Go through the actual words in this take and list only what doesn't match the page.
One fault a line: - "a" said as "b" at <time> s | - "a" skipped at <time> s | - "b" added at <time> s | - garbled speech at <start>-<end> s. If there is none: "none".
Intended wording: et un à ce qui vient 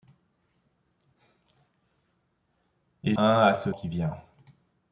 none